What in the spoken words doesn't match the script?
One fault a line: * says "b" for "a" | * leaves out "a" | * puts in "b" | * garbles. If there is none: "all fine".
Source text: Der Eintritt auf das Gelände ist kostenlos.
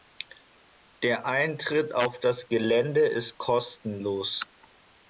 all fine